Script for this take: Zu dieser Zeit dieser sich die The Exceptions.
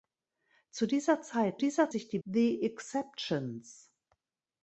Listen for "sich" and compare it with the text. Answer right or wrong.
right